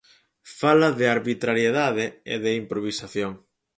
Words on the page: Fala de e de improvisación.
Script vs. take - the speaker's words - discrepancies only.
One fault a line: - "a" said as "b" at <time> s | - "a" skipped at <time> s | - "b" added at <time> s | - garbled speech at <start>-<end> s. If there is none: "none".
- "arbitrariedade" added at 1.1 s